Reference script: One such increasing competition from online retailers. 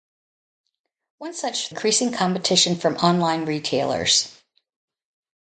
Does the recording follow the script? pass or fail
pass